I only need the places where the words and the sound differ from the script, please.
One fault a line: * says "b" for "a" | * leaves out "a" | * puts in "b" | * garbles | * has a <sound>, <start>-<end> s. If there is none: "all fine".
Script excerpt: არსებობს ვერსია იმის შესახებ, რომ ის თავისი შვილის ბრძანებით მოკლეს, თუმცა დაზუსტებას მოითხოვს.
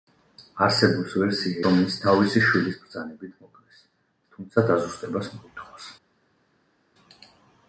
* leaves out "იმის შესახებ"